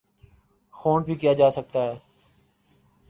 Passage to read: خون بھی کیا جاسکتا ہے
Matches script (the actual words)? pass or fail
pass